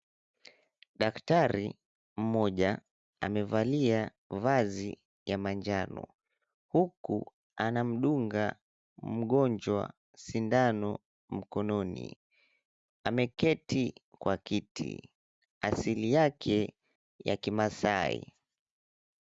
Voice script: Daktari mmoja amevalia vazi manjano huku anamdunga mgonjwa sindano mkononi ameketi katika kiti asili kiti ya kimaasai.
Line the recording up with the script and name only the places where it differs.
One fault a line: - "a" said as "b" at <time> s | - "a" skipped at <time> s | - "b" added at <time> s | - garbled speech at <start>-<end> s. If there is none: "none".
- "ya" added at 5.2 s
- "katika" said as "kwa" at 14.2 s
- "kiti" said as "yake" at 16.1 s